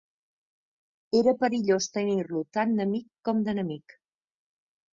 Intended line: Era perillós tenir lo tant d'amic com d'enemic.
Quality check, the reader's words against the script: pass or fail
pass